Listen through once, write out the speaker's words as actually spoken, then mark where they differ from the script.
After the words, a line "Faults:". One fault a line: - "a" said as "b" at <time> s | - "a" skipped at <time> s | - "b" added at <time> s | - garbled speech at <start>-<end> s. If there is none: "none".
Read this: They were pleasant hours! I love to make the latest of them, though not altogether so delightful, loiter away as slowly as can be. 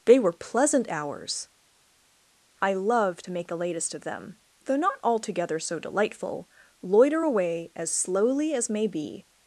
They were pleasant hours! I love to make the latest of them, though not altogether so delightful, loiter away as slowly as may be.
Faults:
- "can" said as "may" at 8.7 s